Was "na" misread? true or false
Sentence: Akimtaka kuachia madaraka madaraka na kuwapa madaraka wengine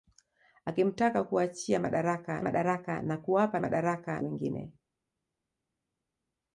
false